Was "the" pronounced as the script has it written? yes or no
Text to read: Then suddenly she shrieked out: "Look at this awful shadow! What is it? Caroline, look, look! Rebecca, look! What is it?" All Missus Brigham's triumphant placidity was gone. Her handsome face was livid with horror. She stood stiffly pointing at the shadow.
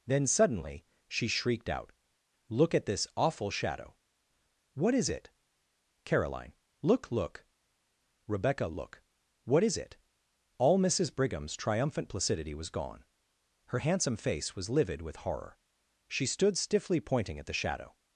yes